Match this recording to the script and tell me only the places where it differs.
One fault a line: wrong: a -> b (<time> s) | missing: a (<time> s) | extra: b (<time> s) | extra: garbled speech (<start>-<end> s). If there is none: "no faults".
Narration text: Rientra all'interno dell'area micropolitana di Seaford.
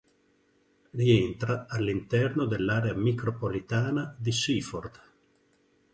no faults